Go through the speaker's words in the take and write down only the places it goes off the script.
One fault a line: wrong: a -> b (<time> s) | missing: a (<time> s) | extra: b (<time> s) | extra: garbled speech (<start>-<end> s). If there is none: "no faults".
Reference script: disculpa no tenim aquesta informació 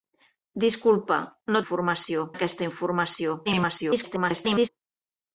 wrong: tenim -> informació (1.6 s)
extra: garbled speech (3.4-4.7 s)